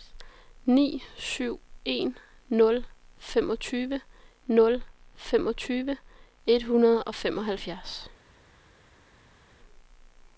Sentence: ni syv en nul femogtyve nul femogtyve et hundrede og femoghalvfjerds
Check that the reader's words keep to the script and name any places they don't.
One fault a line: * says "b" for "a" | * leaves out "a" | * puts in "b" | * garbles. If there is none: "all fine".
all fine